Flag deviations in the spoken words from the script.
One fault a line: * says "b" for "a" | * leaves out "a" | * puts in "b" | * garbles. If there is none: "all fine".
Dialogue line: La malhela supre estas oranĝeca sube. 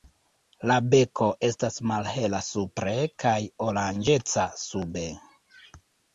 * puts in "beko estas"
* says "kaj" for "estas"